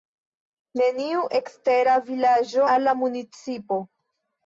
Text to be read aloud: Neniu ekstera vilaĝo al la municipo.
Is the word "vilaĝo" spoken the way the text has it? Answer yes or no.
yes